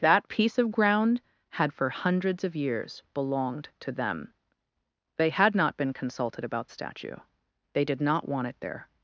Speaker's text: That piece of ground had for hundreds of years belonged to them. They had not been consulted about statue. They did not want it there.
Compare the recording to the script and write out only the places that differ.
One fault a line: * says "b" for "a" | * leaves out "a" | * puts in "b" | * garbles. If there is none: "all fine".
all fine